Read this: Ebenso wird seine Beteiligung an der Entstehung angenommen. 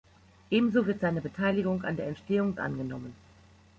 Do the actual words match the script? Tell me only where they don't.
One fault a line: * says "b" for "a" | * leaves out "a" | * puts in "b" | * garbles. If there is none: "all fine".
all fine